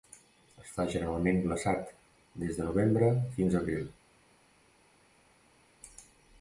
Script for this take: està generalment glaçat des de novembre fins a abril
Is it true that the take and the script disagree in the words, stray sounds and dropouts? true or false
false